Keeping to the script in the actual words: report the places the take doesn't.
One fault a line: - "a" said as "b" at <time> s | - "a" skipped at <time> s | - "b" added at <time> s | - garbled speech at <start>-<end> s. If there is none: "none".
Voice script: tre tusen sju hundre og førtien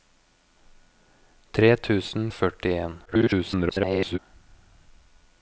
- "sju hundre" skipped at 2.2 s
- garbled speech at 3.1-4.2 s